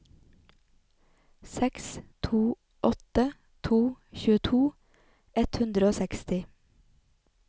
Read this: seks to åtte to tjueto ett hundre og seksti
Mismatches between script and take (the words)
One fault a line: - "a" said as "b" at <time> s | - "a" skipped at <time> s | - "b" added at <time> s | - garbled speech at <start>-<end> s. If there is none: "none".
none